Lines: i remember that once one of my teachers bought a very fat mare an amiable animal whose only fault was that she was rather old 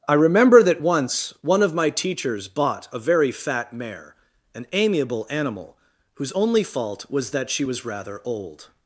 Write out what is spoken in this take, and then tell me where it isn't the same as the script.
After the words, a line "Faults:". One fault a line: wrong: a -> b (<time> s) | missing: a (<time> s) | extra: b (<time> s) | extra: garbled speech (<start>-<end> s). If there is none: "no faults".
i remember that once one of my teachers bought a very fat mare an amiable animal whose only fault was that she was rather old
Faults:
no faults